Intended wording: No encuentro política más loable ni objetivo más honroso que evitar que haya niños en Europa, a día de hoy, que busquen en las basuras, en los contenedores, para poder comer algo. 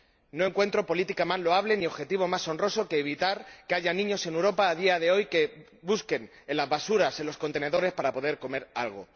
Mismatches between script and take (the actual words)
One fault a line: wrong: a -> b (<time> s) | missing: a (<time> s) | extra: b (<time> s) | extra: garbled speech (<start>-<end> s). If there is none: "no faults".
no faults